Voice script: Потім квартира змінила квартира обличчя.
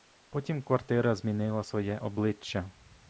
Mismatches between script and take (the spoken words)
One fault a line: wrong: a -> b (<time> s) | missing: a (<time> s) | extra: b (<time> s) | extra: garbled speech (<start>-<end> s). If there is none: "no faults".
wrong: квартира -> своє (1.6 s)